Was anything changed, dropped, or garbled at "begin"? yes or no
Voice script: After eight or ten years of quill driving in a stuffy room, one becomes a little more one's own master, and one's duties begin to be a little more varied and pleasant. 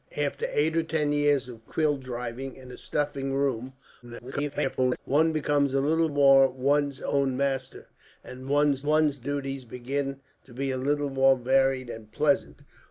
no